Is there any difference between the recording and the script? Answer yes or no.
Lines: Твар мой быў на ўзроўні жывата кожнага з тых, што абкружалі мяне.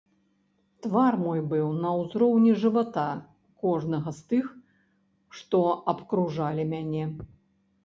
no